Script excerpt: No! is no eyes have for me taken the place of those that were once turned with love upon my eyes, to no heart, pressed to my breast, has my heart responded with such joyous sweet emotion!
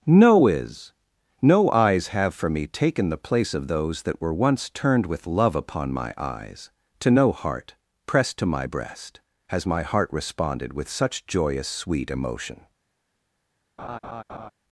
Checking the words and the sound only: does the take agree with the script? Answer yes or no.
no